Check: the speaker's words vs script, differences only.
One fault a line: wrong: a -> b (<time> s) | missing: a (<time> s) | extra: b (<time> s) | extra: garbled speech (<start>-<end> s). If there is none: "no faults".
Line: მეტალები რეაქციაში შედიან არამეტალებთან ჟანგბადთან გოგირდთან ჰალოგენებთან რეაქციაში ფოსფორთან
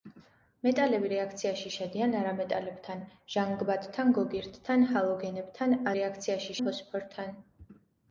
no faults